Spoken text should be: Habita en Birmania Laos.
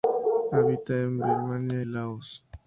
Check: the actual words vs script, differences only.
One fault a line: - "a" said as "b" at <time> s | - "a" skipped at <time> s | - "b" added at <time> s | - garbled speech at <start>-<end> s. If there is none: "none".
none